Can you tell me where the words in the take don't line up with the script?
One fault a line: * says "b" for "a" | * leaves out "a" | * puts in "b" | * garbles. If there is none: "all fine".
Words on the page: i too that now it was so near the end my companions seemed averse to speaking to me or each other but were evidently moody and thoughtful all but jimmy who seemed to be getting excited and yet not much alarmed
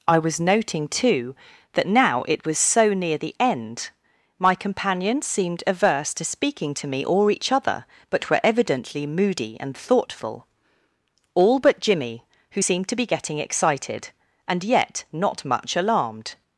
* puts in "was noting"